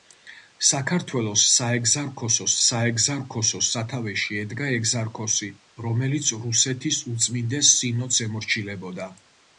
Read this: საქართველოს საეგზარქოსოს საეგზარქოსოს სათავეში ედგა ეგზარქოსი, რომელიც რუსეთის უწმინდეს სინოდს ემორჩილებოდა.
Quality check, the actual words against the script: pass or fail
pass